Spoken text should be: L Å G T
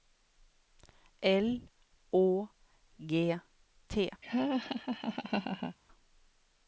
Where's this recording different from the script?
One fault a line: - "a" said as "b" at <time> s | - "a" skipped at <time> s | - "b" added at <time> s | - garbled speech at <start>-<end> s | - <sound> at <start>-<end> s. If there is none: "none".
- laugh at 4.2-5.8 s